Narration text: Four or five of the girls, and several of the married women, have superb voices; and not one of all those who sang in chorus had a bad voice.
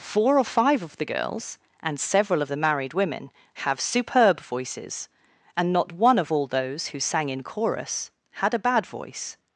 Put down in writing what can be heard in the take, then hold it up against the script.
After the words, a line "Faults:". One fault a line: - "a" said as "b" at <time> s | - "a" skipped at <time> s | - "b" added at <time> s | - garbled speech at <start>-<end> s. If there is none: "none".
Four or five of the girls, and several of the married women, have superb voices; and not one of all those who sang in chorus had a bad voice.
Faults:
none